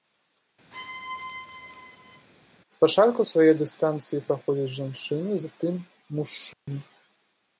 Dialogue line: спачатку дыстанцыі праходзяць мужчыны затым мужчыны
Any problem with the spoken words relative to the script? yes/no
yes